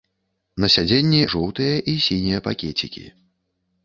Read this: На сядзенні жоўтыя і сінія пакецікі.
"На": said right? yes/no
yes